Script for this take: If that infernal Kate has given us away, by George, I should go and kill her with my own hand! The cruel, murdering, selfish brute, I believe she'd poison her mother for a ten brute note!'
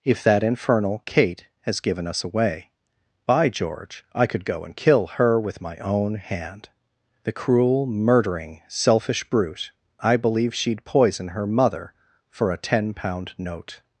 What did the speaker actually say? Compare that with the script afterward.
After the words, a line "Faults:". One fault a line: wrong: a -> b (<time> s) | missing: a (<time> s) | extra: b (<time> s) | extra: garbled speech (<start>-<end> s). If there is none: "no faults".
If that infernal Kate has given us away, by George, I could go and kill her with my own hand! The cruel, murdering, selfish brute, I believe she'd poison her mother for a ten pound note!'
Faults:
wrong: should -> could (4.2 s)
wrong: brute -> pound (12.9 s)